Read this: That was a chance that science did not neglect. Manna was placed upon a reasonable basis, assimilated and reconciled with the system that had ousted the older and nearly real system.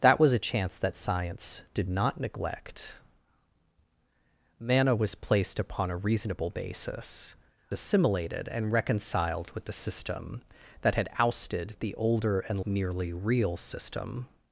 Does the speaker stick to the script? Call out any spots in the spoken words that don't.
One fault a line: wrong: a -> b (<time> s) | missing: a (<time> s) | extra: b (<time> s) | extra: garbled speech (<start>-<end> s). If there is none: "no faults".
no faults